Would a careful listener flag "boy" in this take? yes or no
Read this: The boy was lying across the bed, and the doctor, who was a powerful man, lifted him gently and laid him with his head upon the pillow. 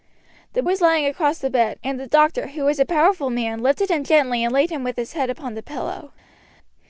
yes